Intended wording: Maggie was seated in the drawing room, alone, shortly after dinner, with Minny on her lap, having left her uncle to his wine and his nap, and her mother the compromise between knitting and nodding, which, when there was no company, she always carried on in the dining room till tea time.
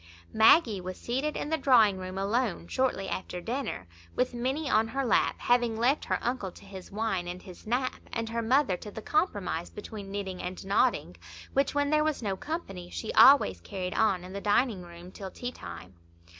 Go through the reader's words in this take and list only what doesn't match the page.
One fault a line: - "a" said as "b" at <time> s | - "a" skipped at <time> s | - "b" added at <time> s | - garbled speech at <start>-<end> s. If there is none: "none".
- "to" added at 8.8 s